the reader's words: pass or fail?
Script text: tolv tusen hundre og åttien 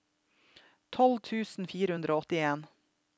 fail